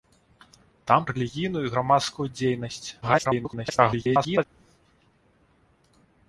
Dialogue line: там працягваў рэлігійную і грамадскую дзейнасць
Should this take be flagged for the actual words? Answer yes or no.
yes